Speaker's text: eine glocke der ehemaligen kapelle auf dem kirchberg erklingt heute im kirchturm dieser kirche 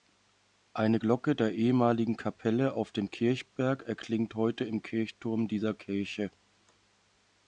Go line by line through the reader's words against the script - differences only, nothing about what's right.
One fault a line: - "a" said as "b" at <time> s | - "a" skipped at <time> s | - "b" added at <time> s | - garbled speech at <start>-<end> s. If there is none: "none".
none